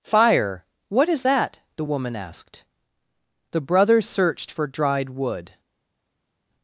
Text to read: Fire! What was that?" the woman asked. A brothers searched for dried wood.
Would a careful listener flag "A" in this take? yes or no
yes